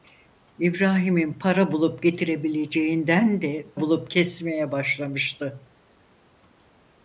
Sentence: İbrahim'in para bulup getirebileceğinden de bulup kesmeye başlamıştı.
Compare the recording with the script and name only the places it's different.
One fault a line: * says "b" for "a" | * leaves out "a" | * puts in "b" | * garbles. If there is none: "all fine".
all fine